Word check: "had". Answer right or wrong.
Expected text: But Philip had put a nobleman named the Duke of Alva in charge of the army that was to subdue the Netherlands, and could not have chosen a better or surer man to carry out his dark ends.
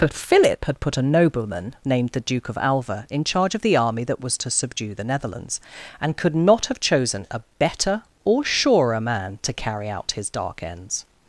right